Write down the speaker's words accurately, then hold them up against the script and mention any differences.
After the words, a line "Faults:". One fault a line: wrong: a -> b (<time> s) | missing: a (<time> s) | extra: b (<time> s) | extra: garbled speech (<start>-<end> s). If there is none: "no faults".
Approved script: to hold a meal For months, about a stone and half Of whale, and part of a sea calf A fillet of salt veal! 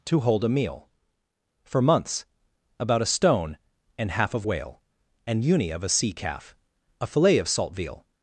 to hold a meal For months, about a stone and half Of whale, and uni of a sea calf A fillet of salt veal!
Faults:
wrong: part -> uni (5.4 s)